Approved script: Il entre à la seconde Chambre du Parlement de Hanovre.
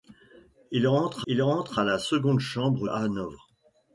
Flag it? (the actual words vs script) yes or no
yes